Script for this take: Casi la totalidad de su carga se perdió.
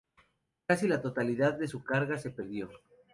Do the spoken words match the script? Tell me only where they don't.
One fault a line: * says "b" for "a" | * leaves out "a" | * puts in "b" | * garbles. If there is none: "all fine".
all fine